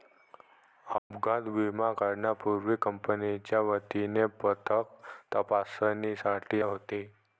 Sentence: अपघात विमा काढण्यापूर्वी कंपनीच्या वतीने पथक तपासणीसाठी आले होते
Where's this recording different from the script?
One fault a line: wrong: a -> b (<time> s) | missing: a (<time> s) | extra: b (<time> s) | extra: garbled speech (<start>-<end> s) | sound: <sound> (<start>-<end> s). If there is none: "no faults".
sound: dropout (1.0-1.1 s)
missing: आले (6.6 s)